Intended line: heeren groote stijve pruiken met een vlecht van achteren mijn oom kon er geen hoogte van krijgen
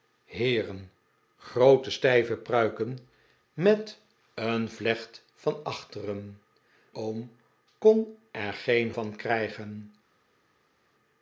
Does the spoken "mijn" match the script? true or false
false